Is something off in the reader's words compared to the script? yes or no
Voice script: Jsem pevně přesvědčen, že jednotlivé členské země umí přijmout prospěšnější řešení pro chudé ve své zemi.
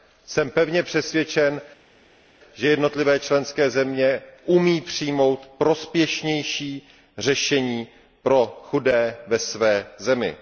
no